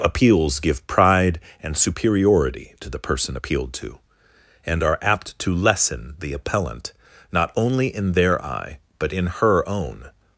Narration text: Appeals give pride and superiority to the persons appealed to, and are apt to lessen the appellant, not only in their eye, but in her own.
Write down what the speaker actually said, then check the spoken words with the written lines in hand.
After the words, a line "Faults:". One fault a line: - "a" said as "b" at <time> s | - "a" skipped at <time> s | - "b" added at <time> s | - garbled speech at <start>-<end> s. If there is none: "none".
Appeals give pride and superiority to the person appealed to, and are apt to lessen the appellant, not only in their eye, but in her own.
Faults:
- "persons" said as "person" at 3.0 s